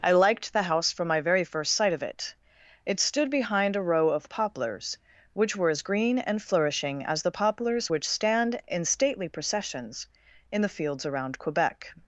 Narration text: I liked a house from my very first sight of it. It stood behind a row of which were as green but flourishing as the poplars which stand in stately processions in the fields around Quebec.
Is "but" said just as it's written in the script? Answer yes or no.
no